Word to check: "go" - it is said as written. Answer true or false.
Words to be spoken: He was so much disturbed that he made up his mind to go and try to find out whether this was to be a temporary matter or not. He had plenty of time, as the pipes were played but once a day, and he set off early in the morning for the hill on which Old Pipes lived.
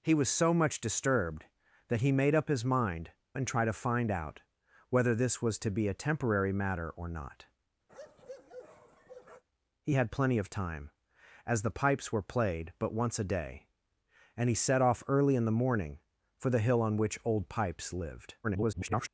false